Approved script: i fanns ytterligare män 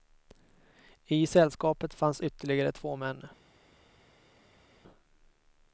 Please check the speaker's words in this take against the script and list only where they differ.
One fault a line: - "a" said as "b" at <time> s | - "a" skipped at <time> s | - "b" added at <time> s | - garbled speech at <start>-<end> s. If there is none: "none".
- "sällskapet" added at 1.3 s
- "två" added at 2.7 s